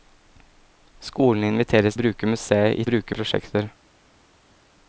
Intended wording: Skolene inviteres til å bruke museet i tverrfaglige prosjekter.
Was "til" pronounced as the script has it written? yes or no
no